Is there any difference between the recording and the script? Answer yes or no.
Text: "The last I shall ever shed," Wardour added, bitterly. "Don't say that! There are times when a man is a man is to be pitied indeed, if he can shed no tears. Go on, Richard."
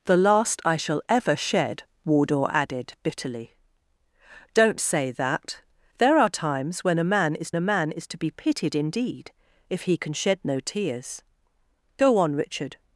no